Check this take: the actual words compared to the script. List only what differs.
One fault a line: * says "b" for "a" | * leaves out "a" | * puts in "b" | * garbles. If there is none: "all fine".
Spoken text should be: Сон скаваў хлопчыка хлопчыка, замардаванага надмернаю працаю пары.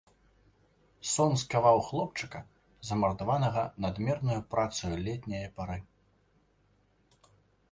* leaves out "хлопчыка"
* puts in "летняе"